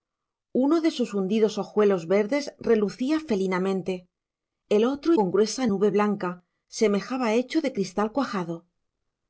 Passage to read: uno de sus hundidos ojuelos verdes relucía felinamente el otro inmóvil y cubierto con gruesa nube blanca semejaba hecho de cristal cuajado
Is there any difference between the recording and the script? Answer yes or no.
yes